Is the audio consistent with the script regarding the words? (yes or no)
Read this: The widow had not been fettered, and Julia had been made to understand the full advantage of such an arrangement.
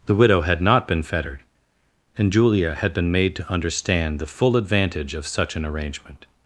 yes